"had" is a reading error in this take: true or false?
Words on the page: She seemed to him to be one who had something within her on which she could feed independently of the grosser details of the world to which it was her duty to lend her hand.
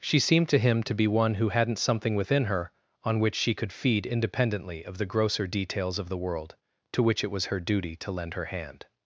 true